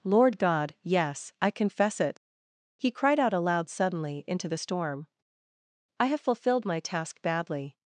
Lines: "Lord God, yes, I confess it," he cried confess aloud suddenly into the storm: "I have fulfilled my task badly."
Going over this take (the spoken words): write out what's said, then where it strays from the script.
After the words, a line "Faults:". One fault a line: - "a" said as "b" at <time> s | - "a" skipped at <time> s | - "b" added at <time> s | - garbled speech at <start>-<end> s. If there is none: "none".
"Lord God, yes, I confess it," he cried out aloud suddenly into the storm: "I have fulfilled my task badly."
Faults:
- "confess" said as "out" at 3.2 s